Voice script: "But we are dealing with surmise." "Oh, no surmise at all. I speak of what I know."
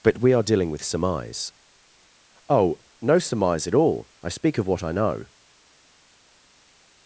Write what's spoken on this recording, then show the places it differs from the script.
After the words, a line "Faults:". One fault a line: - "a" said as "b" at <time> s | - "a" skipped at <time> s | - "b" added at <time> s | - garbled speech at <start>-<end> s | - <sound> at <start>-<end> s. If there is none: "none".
"But we are dealing with surmise." "Oh, no surmise at all. I speak of what I know."
Faults:
none